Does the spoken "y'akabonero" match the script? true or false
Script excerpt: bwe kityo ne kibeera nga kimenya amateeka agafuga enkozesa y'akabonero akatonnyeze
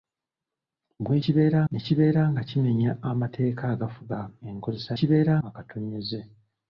false